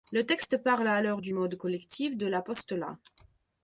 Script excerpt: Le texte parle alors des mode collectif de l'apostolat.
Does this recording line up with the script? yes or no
no